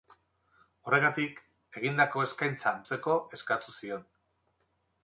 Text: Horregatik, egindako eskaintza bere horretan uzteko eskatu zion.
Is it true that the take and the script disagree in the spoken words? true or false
true